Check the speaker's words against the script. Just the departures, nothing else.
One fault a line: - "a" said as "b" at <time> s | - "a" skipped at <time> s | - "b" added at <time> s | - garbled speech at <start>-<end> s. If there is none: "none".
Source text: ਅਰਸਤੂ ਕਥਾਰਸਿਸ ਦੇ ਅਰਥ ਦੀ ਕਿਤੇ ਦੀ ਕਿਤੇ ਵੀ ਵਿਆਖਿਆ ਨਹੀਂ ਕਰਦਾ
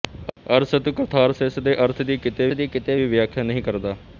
none